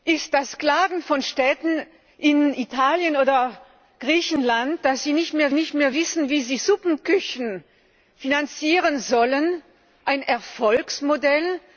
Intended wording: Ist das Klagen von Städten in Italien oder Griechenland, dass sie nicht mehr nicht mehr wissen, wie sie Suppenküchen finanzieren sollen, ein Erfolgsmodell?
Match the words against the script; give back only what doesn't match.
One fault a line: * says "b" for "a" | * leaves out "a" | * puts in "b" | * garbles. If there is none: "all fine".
all fine